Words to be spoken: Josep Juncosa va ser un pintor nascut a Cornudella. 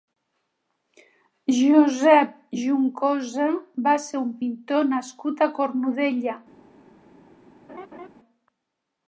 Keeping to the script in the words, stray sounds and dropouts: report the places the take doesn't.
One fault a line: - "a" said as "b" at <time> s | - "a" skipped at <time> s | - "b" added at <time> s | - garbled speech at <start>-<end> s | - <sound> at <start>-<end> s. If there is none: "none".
- laugh at 7.7-8.1 s